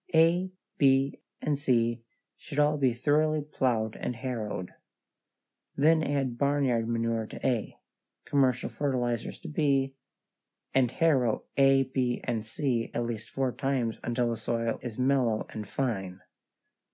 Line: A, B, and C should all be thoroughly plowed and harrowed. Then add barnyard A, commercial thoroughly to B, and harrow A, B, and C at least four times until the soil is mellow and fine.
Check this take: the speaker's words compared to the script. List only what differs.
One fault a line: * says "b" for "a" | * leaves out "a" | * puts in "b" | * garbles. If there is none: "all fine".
* puts in "manure to"
* says "fertilizers" for "thoroughly"